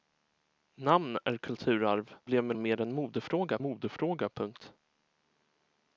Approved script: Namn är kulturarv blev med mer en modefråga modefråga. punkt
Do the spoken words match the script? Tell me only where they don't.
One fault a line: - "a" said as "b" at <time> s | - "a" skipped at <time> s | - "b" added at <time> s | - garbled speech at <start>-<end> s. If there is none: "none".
none